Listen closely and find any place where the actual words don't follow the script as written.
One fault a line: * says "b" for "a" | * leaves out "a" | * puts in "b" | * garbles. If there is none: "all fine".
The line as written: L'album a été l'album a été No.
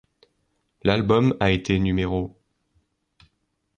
* leaves out "l'album a été"